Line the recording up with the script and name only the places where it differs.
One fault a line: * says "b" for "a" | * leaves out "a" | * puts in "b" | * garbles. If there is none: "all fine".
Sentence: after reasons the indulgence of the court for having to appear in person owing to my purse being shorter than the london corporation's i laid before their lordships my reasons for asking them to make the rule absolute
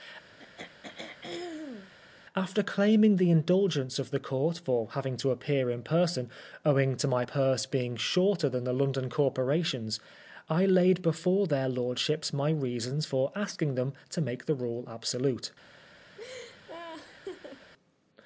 * says "claiming" for "reasons"